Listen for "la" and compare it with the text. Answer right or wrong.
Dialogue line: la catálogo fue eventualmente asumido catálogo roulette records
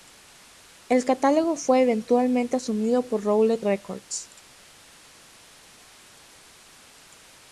wrong